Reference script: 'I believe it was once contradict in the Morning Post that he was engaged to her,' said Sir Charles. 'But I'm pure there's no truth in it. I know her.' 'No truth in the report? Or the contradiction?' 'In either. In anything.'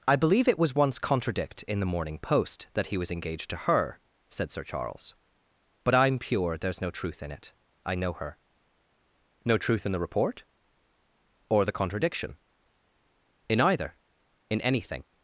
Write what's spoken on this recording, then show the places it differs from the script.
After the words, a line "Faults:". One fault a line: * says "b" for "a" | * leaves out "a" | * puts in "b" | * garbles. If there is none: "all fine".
'I believe it was once contradict in the Morning Post that he was engaged to her,' said Sir Charles. 'But I'm pure there's no truth in it. I know her.' 'No truth in the report? Or the contradiction?' 'In either. In anything.'
Faults:
all fine